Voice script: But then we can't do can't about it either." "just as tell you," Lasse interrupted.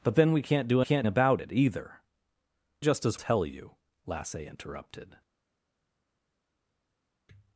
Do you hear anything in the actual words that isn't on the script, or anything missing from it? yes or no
no